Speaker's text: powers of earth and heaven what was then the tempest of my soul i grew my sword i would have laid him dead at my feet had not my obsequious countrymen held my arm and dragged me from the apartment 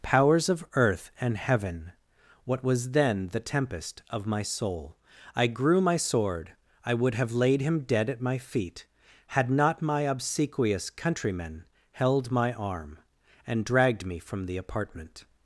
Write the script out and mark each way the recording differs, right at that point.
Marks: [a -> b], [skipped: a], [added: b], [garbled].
powers of earth and heaven what was then the tempest of my soul i grew my sword i would have laid him dead at my feet had not my obsequious countrymen held my arm and dragged me from the apartment